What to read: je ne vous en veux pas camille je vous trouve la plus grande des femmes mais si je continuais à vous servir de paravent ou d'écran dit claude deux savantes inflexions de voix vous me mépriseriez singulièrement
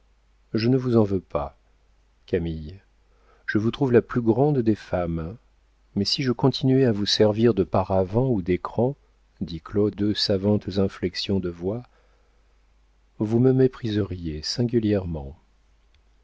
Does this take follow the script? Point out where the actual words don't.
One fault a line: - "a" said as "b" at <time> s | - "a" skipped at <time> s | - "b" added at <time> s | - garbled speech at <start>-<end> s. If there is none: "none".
none